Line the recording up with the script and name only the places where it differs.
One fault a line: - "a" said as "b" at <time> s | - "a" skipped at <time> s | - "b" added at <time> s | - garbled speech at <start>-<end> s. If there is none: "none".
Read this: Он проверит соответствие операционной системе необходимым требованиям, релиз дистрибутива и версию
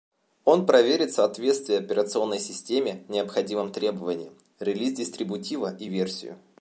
none